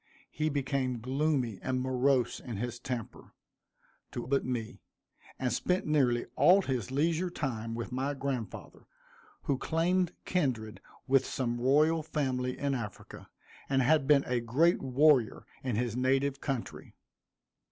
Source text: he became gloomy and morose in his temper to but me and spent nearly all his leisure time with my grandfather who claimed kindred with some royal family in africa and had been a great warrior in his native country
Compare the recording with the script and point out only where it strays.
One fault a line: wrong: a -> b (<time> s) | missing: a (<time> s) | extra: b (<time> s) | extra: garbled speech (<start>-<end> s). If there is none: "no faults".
no faults